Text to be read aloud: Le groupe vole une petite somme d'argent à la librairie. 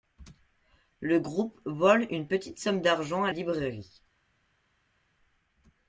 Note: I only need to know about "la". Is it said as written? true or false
false